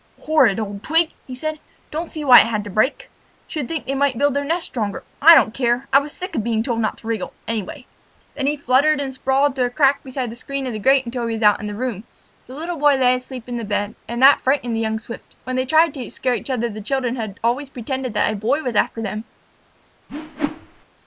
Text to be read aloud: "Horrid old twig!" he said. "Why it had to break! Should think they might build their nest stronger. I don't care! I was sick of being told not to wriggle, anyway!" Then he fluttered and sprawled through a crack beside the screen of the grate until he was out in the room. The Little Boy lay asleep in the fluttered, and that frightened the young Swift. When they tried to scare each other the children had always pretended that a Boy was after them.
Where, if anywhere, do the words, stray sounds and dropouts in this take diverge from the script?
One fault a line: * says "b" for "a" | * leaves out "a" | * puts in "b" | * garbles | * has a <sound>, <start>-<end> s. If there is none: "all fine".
* puts in "Don't see"
* says "bed" for "fluttered"
* has a whoosh, 20.1-20.9 s